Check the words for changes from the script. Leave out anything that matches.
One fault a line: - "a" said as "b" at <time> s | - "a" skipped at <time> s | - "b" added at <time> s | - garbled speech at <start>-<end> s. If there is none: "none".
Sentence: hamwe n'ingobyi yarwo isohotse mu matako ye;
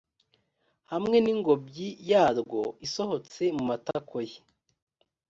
none